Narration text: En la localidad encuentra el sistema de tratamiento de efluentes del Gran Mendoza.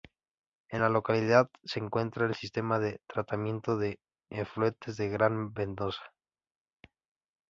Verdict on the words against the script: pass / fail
fail